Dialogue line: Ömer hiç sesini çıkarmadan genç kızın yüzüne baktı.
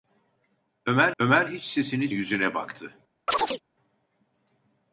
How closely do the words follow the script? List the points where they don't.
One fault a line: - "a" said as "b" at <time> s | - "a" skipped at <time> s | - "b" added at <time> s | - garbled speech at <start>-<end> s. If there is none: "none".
- "ömer" added at 1.2 s
- "çıkarmadan genç kızın" skipped at 2.1 s